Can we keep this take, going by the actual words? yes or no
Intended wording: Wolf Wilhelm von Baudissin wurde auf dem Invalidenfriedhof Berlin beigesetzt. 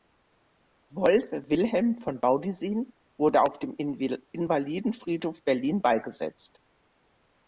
yes